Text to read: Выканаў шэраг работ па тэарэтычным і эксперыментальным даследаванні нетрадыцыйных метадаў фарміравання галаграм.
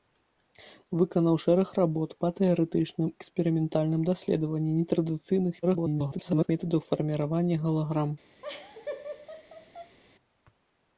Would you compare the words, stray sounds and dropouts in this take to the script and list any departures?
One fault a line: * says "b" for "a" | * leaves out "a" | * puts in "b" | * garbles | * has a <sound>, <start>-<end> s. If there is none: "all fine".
* leaves out "і"
* garbles
* has a laugh, 8.4-10.0 s